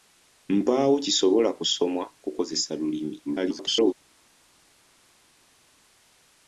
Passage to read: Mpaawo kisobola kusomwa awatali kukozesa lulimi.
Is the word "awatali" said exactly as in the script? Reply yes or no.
no